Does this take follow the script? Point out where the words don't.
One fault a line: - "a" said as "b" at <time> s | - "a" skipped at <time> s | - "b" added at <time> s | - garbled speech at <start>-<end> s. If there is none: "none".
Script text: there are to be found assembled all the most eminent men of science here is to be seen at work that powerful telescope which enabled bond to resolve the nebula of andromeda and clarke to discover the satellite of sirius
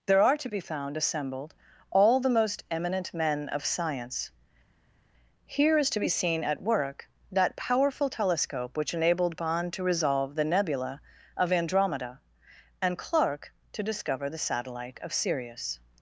none